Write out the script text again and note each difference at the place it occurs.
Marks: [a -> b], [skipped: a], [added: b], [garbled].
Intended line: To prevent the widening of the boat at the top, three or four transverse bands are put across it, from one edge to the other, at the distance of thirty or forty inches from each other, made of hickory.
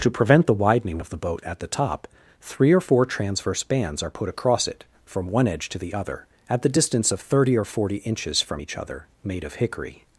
To prevent the widening of the boat at the top, three or four transverse bands are put across it, from one edge to the other, at the distance of thirty or forty inches from each other, made of hickory.